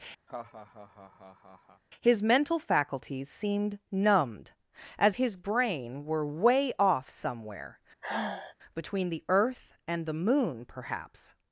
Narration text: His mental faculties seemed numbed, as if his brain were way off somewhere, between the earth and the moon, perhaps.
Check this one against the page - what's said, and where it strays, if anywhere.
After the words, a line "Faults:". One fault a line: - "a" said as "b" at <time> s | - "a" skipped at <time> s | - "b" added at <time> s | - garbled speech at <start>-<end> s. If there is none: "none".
His mental faculties seemed numbed, as his brain were way off somewhere, between the earth and the moon, perhaps.
Faults:
- "if" skipped at 5.2 s